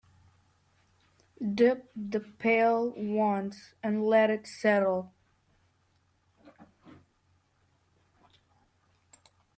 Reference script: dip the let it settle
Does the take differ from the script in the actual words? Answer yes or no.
yes